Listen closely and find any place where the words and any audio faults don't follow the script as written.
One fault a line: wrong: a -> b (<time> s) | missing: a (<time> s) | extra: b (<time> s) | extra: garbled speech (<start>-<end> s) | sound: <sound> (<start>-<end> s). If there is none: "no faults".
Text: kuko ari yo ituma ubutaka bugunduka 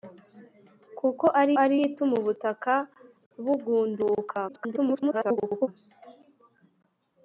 extra: ari (1.6 s)
extra: garbled speech (4.5-5.7 s)